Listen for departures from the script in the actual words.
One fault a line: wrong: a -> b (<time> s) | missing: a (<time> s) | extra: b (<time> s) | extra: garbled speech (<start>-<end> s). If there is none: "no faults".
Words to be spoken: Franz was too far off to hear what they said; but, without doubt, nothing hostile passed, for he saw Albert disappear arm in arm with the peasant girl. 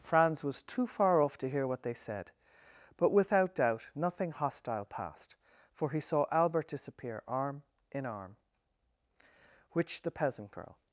wrong: with -> which (9.7 s)